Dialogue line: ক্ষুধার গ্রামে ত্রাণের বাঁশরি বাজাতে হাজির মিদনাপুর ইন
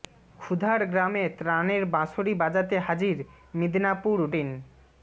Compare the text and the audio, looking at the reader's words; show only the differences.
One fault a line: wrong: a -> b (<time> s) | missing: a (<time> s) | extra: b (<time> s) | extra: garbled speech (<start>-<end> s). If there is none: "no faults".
no faults